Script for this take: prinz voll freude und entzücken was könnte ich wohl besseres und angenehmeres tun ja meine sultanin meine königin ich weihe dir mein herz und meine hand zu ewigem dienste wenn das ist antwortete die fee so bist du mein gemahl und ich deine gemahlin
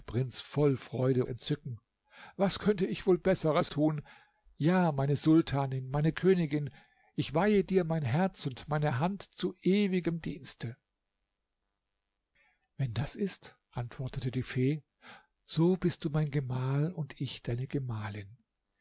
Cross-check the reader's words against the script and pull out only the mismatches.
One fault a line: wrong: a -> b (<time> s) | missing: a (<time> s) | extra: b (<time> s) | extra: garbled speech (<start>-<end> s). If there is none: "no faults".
missing: und (1.2 s)
missing: und angenehmeres (3.7 s)